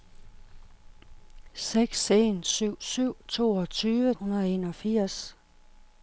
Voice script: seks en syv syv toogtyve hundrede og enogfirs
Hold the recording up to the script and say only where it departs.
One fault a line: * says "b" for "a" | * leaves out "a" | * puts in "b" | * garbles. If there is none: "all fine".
all fine